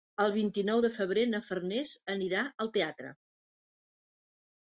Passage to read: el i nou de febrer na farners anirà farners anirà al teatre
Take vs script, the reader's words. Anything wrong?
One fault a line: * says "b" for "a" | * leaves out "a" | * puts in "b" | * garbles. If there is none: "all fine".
* puts in "vint"
* leaves out "farners anirà"